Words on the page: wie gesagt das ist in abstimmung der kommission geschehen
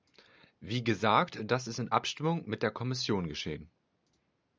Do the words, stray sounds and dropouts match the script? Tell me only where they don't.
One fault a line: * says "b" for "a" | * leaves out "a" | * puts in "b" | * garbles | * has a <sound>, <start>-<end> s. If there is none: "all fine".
* puts in "mit"